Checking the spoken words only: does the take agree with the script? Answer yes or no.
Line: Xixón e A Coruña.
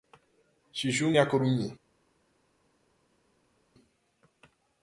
yes